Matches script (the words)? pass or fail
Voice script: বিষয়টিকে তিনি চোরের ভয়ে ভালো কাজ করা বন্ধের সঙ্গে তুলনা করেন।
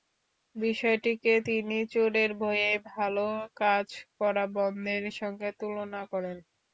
pass